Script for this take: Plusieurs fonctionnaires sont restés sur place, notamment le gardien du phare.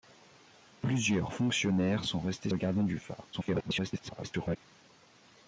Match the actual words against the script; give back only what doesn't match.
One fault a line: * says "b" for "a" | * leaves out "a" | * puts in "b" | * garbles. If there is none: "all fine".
* leaves out "sur place notamment"
* garbles